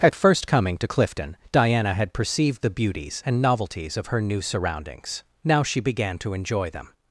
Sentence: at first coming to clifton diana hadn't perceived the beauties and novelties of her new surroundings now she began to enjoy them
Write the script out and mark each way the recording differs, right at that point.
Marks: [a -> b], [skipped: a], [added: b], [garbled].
at first coming to clifton diana [hadn't -> had] perceived the beauties and novelties of her new surroundings now she began to enjoy them